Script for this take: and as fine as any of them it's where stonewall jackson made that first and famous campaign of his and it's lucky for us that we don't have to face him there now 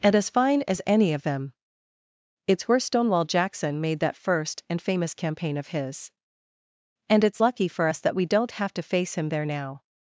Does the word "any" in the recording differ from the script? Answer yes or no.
no